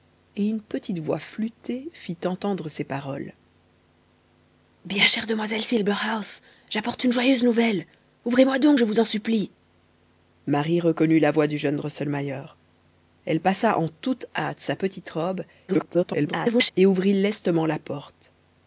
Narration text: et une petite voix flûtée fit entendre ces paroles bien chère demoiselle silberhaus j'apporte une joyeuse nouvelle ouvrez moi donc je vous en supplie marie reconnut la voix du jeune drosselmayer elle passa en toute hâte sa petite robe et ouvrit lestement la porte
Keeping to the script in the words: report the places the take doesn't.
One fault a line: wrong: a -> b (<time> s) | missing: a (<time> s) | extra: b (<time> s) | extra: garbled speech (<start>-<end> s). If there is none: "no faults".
extra: garbled speech (15.7-16.7 s)